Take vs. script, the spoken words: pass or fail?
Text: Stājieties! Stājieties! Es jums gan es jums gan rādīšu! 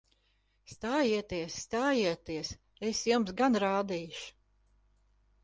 fail